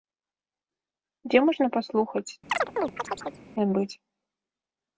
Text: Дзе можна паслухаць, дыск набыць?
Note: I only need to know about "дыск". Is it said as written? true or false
false